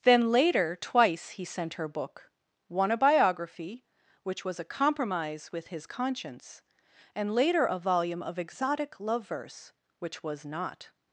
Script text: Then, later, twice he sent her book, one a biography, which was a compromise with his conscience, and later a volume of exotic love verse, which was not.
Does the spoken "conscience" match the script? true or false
true